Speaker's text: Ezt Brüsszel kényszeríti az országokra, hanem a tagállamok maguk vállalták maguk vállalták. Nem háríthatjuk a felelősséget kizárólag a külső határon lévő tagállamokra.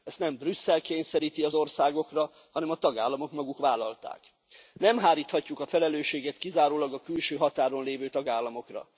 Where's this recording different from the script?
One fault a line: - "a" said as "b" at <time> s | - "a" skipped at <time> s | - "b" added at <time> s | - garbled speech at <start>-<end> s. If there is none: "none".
- "nem" added at 0.2 s
- "maguk vállalták" skipped at 4.2 s